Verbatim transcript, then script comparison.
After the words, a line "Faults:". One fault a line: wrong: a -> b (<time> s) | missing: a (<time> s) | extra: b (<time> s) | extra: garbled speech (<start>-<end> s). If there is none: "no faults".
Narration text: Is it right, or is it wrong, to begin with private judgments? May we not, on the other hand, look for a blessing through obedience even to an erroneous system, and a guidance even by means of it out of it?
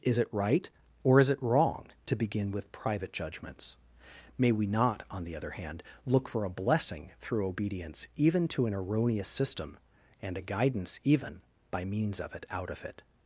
Is it right, or is it wrong, to begin with private judgments? May we not, on the other hand, look for a blessing through obedience even to an erroneous system, and a guidance even by means of it out of it?
Faults:
no faults